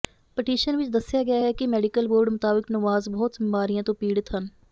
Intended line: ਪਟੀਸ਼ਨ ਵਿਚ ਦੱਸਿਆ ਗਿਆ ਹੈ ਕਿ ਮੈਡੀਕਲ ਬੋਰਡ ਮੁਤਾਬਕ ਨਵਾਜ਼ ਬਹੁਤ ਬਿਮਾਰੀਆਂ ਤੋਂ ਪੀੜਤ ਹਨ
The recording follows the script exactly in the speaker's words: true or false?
true